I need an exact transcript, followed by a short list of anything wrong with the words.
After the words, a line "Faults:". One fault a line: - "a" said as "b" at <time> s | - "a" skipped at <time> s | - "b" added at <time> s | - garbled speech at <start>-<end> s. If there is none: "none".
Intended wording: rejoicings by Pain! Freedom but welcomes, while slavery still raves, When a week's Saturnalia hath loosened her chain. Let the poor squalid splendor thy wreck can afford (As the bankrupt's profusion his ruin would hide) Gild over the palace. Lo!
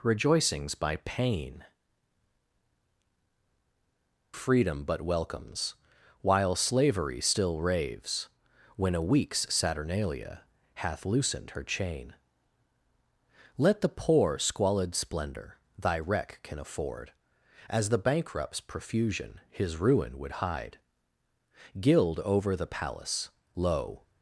rejoicings by Pain! Freedom but welcomes, while slavery still raves, When a week's Saturnalia hath loosened her chain. Let the poor squalid splendor thy wreck can afford (As the bankrupt's profusion his ruin would hide) Gild over the palace. Lo!
Faults:
none